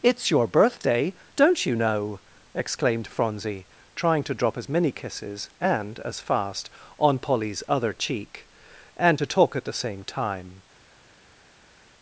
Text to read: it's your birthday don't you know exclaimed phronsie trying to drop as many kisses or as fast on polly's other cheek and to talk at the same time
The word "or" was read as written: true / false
false